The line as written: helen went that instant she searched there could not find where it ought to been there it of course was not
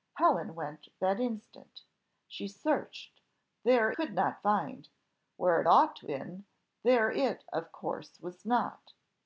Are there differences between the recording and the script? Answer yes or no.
no